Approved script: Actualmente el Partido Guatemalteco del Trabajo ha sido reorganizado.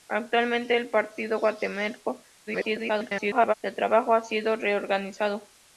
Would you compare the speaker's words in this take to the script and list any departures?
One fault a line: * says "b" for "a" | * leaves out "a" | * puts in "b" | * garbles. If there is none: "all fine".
* garbles